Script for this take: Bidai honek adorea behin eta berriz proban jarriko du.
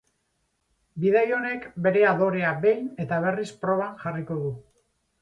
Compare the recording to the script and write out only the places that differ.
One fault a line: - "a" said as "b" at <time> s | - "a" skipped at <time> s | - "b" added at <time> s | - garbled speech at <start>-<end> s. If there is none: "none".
- "bere" added at 1.9 s